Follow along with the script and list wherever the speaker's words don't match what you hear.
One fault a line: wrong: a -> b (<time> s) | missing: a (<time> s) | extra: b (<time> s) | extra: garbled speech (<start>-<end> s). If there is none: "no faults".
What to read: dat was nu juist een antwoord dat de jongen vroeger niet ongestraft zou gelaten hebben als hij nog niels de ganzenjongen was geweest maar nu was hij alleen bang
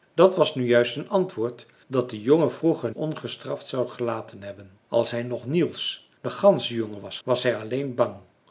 missing: niet (2.9 s)
missing: geweest maar nu (7.2 s)